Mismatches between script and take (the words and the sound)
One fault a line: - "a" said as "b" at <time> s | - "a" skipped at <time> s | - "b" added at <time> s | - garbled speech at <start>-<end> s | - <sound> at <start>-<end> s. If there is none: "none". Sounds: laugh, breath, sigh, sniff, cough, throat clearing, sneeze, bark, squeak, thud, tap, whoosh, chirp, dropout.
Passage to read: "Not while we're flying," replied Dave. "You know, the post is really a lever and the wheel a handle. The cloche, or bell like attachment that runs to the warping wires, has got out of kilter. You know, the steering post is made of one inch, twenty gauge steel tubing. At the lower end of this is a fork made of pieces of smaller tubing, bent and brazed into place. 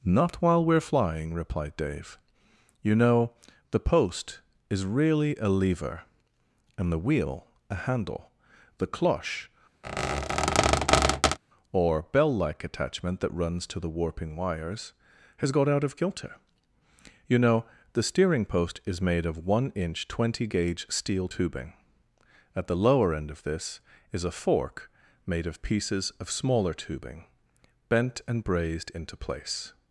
- squeak at 9.8-11.4 s